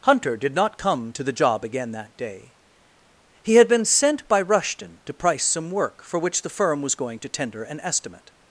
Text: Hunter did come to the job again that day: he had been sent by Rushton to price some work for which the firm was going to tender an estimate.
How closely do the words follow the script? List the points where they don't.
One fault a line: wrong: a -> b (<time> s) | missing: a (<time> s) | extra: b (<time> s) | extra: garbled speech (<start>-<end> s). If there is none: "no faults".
extra: not (0.6 s)